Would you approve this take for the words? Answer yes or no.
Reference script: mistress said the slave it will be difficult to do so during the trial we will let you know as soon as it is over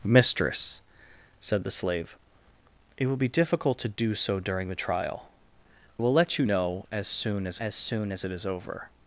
no